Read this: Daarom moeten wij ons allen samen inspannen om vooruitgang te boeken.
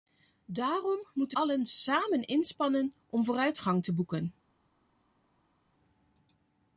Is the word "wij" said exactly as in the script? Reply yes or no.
no